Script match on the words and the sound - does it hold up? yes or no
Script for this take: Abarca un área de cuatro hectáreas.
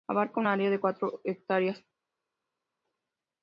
yes